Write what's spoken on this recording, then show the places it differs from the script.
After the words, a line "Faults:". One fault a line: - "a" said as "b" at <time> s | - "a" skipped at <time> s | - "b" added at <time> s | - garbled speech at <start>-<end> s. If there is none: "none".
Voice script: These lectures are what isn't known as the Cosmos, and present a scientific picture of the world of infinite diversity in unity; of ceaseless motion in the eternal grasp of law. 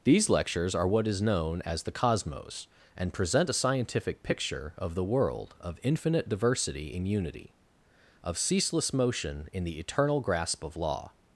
These lectures are what is known as the Cosmos, and present a scientific picture of the world of infinite diversity in unity; of ceaseless motion in the eternal grasp of law.
Faults:
- "isn't" said as "is" at 1.1 s